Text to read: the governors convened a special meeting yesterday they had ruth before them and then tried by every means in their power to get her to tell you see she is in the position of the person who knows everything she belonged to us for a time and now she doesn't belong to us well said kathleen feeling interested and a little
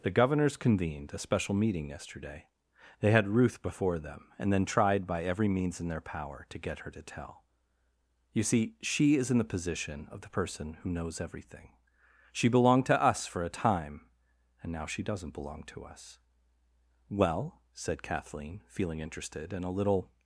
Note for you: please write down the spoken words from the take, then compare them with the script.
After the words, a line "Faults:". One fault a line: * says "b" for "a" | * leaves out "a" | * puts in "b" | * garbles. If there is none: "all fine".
the governors convened a special meeting yesterday they had ruth before them and then tried by every means in their power to get her to tell you see she is in the position of the person who knows everything she belonged to us for a time and now she doesn't belong to us well said kathleen feeling interested and a little
Faults:
all fine